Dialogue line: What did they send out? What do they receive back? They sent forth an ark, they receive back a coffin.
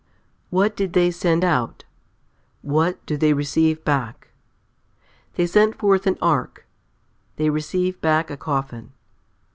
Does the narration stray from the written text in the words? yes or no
no